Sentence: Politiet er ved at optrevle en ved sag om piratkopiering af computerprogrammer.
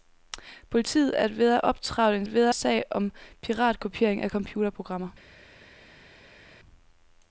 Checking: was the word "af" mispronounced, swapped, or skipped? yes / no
no